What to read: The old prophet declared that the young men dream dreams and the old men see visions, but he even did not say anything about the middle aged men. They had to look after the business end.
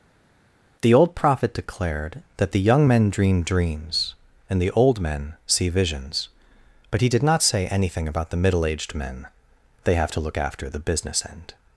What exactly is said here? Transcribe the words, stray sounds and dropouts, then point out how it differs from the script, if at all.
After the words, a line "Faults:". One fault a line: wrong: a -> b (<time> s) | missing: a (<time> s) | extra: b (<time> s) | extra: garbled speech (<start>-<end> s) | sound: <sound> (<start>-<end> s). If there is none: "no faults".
The old prophet declared that the young men dream dreams and the old men see visions, but he did not say anything about the middle aged men. They have to look after the business end.
Faults:
missing: even (7.1 s)
wrong: had -> have (9.9 s)